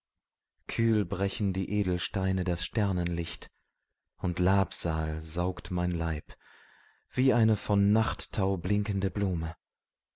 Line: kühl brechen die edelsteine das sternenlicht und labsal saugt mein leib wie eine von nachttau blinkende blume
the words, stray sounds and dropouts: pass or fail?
pass